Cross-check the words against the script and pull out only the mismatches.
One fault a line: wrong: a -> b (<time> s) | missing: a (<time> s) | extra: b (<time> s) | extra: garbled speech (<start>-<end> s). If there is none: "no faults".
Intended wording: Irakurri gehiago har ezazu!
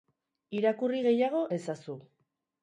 no faults